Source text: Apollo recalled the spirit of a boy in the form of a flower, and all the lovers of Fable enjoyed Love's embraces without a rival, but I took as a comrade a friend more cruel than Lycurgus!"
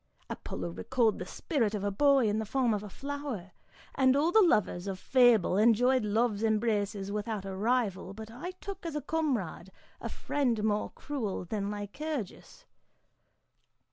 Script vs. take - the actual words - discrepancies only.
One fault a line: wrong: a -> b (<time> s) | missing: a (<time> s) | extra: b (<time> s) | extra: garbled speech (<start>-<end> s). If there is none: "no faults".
no faults